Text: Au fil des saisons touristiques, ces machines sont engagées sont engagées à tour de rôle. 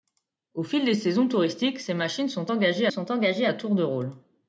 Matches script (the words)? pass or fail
pass